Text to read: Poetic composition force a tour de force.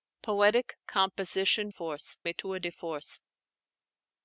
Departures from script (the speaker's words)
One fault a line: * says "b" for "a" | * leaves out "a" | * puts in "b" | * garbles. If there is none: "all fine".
all fine